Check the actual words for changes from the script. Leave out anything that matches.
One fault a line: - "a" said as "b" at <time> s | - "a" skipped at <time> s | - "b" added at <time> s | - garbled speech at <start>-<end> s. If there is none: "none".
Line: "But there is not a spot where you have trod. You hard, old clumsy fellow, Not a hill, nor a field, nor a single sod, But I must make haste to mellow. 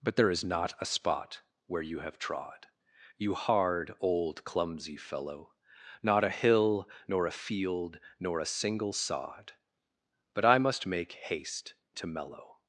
none